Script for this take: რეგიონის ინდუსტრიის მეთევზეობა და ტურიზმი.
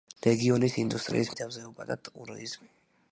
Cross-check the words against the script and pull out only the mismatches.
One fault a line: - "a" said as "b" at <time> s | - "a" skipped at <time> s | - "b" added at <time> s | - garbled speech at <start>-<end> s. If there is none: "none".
none